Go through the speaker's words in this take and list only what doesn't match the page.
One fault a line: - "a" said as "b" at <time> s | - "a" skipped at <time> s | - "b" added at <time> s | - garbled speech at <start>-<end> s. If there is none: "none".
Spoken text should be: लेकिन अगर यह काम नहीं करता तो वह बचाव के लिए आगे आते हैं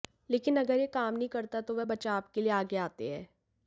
none